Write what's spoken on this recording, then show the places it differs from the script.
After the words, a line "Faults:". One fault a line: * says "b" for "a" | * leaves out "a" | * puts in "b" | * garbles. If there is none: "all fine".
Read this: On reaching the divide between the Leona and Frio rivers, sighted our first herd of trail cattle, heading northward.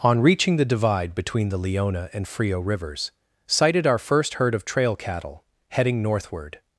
On reaching the divide between the Leona and Frio rivers, sighted our first herd of trail cattle, heading northward.
Faults:
all fine